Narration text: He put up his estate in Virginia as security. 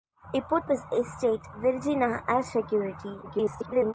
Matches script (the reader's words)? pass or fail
fail